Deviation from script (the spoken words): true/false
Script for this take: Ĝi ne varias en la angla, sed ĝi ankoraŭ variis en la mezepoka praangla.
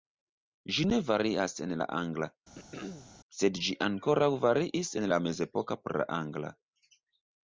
false